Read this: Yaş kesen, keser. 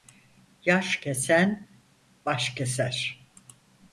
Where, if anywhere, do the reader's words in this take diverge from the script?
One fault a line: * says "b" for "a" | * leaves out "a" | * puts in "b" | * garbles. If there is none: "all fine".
* puts in "baş"